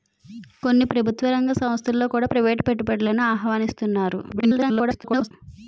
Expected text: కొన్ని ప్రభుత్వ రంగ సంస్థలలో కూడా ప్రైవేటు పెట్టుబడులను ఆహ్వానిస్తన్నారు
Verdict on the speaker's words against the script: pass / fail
fail